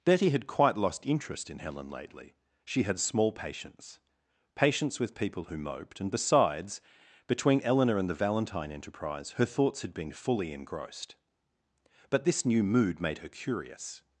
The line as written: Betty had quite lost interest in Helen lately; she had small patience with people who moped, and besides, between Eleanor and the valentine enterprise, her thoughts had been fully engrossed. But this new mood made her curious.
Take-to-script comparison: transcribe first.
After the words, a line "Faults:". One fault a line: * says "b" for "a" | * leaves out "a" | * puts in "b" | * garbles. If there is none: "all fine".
Betty had quite lost interest in Helen lately; she had small patience patience with people who moped, and besides, between Eleanor and the valentine enterprise, her thoughts had been fully engrossed. But this new mood made her curious.
Faults:
* puts in "patience"